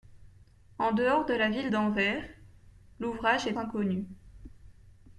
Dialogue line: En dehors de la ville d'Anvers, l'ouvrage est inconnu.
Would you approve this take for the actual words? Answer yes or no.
yes